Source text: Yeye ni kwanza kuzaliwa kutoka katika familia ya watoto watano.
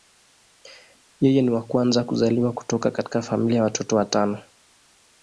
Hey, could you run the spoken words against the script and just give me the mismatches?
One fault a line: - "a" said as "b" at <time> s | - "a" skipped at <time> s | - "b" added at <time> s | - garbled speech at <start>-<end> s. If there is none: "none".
- "wa" added at 1.5 s